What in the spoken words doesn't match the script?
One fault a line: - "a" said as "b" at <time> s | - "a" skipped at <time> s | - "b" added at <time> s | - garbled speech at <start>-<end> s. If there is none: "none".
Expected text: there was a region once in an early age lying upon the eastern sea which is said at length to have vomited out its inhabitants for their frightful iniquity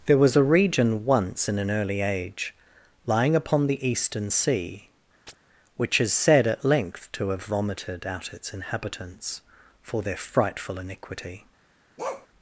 none